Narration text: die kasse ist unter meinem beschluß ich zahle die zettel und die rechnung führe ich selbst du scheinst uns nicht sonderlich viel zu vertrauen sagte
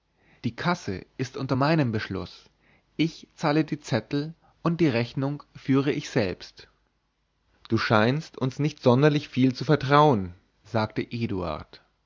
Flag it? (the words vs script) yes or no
no